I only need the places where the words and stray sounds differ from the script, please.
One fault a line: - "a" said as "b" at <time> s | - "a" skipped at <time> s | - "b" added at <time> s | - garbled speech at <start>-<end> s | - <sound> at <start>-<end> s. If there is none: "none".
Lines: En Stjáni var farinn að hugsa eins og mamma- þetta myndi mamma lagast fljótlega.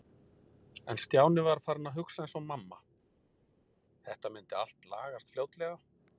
- "mamma" said as "allt" at 4.6 s